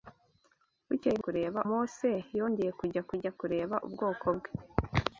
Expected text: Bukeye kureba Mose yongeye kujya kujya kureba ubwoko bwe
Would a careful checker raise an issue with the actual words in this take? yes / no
no